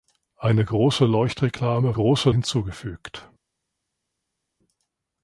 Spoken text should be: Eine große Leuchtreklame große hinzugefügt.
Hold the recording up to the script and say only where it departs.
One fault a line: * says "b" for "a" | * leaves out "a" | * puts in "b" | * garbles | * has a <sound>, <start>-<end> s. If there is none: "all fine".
all fine